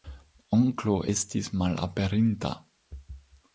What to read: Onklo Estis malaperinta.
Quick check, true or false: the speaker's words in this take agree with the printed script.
true